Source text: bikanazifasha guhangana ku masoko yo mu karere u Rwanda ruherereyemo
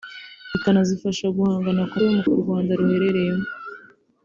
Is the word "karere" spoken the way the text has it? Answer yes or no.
no